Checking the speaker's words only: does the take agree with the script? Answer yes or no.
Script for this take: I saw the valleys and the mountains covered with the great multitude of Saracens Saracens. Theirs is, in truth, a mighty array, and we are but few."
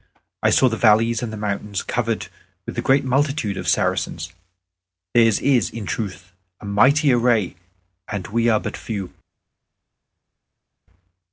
no